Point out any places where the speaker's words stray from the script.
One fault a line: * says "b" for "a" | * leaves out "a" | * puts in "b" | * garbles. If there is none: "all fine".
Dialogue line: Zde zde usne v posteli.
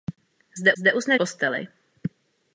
all fine